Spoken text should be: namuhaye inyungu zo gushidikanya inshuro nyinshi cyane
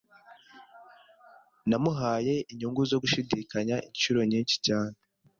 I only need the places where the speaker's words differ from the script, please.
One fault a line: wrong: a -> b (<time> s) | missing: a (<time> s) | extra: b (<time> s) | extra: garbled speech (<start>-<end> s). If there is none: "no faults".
no faults